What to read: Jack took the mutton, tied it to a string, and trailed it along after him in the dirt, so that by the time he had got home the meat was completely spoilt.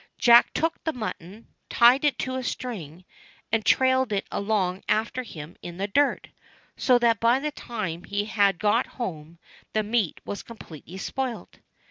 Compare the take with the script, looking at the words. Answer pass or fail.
pass